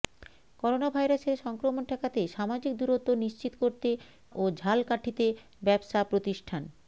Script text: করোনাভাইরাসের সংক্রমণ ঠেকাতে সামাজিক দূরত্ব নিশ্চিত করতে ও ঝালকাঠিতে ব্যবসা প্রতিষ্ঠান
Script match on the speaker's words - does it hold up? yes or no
yes